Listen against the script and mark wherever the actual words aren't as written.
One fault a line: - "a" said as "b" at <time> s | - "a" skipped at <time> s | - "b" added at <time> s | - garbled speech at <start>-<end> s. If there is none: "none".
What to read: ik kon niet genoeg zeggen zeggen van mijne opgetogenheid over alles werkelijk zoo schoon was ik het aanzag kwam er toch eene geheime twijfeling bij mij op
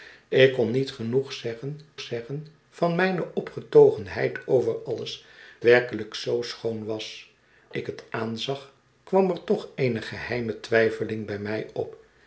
none